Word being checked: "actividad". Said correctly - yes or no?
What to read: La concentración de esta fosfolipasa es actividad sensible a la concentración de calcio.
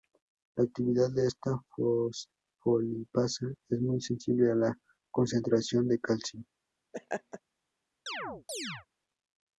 no